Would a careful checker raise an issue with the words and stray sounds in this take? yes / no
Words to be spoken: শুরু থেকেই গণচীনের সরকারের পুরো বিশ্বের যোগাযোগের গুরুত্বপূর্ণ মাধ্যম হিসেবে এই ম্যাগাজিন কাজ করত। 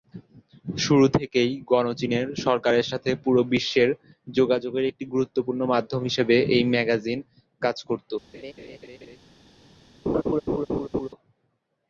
yes